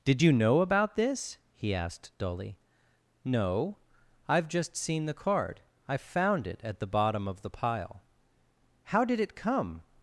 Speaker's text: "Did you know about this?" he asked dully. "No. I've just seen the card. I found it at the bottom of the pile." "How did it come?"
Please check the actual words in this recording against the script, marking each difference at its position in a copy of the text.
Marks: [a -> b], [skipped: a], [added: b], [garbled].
"Did you know about this?" he asked dully. "No. I've just seen the card. I found it at the bottom of the pile." "How did it come?"